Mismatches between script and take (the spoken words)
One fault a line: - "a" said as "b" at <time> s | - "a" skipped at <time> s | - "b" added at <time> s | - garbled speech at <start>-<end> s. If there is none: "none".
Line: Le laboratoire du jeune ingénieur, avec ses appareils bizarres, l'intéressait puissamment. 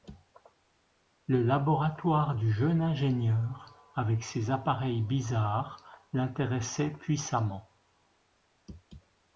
none